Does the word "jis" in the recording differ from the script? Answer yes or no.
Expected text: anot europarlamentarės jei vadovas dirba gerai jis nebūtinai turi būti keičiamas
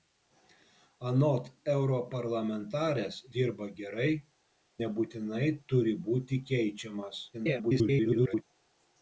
yes